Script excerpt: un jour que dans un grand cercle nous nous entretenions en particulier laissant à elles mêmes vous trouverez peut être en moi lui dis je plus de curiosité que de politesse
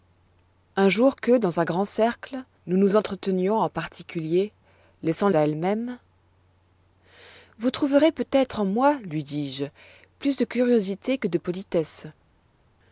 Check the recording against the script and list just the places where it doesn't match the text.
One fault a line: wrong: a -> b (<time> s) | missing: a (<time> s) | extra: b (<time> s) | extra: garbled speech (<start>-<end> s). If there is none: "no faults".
no faults